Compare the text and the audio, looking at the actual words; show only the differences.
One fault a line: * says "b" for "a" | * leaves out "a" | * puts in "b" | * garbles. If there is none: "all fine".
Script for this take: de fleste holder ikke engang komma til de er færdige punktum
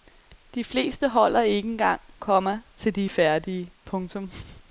all fine